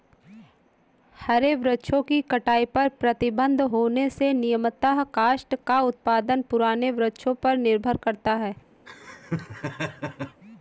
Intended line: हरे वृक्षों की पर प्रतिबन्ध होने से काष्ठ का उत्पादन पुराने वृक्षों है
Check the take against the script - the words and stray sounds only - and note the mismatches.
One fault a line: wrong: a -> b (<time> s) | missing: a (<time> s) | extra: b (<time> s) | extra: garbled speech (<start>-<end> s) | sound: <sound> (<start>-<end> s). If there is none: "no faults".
extra: कटाई (2.3 s)
extra: नियमतः (4.3 s)
extra: पर निर्भर करता (7.4 s)
sound: laugh (8.9-10.4 s)